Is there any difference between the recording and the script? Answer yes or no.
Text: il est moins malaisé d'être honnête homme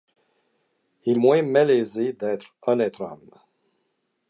yes